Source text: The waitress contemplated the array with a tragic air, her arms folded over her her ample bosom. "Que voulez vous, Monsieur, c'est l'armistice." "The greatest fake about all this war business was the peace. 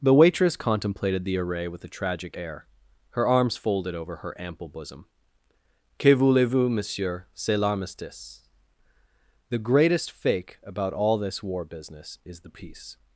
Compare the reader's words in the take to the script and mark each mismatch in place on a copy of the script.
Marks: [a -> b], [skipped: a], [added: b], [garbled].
The waitress contemplated the array with a tragic air, her arms folded over her [skipped: her] ample bosom. "Que voulez vous, Monsieur, c'est l'armistice." "The greatest fake about all this war business [was -> is] the peace.